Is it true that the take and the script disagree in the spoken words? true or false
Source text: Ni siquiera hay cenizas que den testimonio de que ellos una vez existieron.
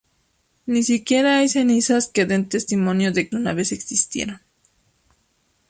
true